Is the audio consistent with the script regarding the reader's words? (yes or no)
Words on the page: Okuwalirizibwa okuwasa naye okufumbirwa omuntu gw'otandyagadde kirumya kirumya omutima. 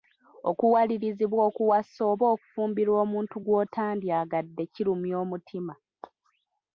no